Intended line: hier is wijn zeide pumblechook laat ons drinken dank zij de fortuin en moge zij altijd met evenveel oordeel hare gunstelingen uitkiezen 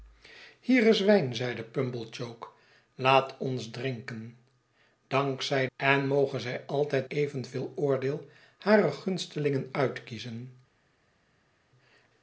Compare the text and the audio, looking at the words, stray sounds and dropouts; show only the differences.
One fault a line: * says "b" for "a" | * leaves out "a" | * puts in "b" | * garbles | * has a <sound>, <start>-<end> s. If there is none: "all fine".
* leaves out "de fortuin"
* leaves out "met"